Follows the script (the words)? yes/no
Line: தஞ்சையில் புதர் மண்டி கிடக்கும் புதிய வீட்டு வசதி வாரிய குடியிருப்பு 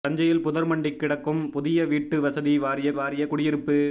no